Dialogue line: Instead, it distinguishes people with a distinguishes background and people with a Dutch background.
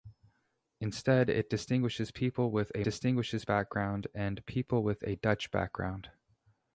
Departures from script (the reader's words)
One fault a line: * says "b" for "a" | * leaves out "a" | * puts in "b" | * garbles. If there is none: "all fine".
all fine